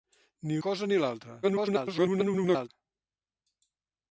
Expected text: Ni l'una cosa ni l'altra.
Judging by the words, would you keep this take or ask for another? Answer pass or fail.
fail